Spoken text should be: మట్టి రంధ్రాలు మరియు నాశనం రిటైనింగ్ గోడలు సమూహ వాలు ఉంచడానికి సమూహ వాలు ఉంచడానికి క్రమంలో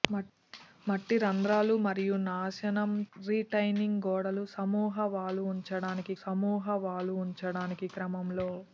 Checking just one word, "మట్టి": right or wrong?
right